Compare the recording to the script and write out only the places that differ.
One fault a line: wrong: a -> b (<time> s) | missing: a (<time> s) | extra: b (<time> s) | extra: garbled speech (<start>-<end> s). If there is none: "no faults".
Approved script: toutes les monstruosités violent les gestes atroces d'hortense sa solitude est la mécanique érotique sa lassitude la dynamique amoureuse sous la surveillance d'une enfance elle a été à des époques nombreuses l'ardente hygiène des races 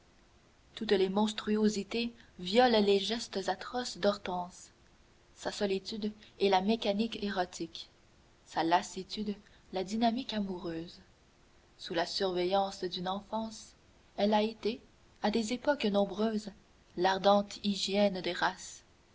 no faults